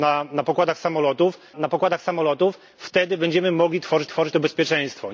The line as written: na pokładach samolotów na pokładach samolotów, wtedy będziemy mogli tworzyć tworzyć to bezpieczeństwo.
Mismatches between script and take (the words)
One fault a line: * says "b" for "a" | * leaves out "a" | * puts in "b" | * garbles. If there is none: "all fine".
all fine